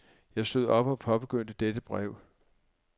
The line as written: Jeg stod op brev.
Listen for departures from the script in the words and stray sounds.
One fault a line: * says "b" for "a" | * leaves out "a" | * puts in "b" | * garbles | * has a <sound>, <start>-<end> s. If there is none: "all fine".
* puts in "og påbegyndte dette"